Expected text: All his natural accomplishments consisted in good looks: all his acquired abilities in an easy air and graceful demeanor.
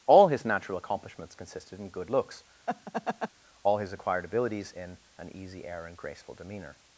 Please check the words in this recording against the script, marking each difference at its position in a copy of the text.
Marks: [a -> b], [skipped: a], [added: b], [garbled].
All his natural accomplishments consisted in good looks: all his acquired abilities in an easy air and graceful demeanor.